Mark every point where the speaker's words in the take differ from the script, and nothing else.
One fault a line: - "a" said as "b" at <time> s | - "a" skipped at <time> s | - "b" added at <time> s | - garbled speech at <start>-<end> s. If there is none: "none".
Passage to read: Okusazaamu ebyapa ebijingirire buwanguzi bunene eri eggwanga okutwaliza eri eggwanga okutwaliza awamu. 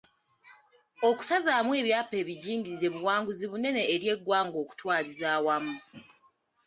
- "eri eggwanga okutwaliza" skipped at 5.3 s